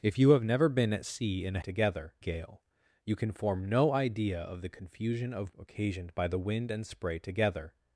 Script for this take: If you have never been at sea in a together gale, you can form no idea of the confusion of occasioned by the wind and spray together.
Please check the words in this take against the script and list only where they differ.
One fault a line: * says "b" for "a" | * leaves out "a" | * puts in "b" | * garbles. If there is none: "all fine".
all fine